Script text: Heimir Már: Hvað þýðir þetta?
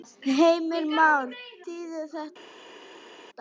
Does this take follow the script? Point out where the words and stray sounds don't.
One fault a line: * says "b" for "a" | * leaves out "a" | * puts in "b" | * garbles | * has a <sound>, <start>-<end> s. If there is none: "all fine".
* leaves out "Hvað"